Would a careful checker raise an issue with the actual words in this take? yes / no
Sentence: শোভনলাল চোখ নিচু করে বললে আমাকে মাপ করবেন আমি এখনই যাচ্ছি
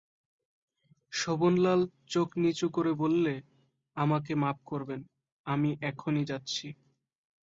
no